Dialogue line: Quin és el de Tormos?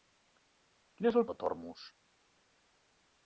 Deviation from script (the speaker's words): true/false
false